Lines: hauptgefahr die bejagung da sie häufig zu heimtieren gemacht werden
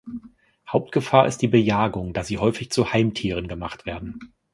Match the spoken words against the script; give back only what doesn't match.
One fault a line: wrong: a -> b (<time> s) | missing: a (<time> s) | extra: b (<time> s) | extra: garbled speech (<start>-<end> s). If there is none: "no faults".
extra: ist (1.3 s)